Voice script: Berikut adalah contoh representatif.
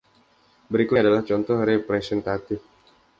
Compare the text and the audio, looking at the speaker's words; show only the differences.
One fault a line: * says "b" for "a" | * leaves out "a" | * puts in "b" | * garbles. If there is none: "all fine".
all fine